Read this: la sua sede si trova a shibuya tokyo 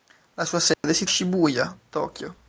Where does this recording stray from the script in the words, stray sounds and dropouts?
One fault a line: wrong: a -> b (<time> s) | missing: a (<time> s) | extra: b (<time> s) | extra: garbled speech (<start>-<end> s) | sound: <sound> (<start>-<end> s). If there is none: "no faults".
sound: dropout (0.7-0.8 s)
missing: trova (1.1 s)